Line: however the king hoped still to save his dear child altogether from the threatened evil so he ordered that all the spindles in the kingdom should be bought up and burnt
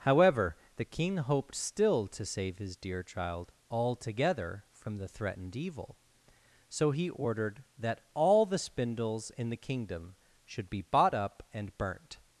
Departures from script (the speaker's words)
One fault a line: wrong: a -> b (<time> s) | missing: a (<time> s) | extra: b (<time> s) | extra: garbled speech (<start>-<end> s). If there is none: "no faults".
no faults